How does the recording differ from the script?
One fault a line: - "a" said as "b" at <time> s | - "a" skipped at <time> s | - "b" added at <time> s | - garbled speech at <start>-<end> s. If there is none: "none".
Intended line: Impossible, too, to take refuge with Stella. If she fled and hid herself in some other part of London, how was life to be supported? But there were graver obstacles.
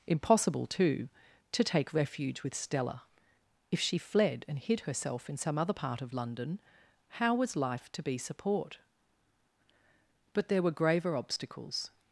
- "supported" said as "support" at 8.2 s